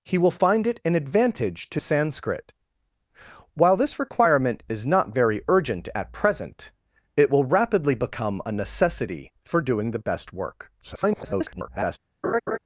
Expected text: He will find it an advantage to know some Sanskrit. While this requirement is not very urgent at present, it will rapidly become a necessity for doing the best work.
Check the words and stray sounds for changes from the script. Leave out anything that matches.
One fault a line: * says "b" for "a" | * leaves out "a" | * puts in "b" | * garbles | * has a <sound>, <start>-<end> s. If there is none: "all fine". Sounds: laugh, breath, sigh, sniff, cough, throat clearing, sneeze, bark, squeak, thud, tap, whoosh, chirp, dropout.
* leaves out "know some"
* garbles
* has a laugh, 12.2-12.6 s